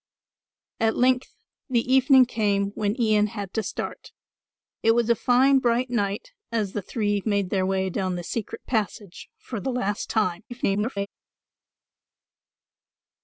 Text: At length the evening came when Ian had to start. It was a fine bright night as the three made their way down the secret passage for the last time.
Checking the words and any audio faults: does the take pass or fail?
fail